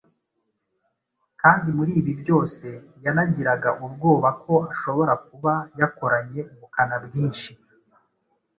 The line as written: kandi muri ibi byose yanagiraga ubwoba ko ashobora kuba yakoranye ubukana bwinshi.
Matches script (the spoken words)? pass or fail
pass